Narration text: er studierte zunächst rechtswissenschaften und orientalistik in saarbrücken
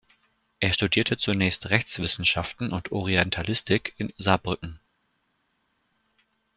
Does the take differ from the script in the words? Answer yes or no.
no